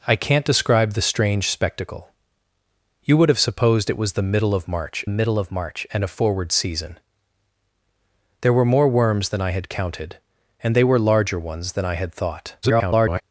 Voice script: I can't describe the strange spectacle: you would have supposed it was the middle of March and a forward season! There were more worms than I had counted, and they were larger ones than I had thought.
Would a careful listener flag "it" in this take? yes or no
no